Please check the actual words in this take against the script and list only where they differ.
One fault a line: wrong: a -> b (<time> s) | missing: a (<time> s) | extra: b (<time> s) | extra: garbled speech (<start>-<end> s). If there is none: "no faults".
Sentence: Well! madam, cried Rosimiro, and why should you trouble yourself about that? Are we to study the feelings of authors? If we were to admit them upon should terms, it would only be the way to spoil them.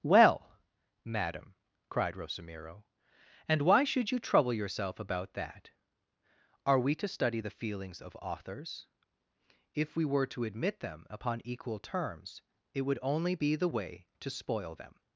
wrong: should -> equal (11.4 s)